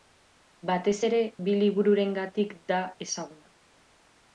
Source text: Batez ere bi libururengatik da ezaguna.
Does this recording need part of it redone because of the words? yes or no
no